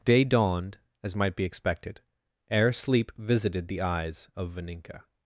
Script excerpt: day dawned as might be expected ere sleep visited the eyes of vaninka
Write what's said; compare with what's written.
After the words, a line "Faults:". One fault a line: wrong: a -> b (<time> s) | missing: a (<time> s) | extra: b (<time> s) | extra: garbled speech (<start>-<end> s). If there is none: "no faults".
day dawned as might be expected ere sleep visited the eyes of vaninka
Faults:
no faults